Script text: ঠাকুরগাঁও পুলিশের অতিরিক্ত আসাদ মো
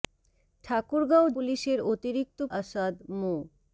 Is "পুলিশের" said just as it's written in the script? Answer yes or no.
yes